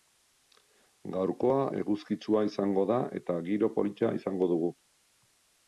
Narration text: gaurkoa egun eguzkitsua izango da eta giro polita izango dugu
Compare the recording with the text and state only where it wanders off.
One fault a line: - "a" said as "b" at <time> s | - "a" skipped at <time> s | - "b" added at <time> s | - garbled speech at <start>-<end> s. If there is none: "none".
- "egun" skipped at 1.6 s